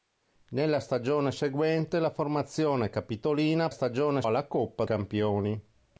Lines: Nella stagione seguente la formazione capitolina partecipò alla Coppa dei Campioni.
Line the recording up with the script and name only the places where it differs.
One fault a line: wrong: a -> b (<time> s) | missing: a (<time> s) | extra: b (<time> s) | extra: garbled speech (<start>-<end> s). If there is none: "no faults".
wrong: partecipò -> stagione (3.7 s)
missing: dei (4.8 s)